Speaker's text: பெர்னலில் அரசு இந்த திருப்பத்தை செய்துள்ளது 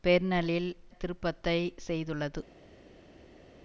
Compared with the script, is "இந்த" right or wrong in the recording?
wrong